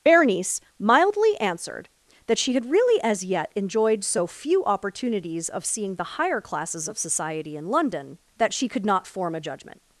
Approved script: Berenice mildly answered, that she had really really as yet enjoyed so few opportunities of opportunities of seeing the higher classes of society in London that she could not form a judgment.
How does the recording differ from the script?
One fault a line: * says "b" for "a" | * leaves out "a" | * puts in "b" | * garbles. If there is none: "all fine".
* leaves out "really"
* leaves out "opportunities of"